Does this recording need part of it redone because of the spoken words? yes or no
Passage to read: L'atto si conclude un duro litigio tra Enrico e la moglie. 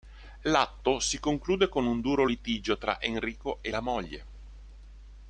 yes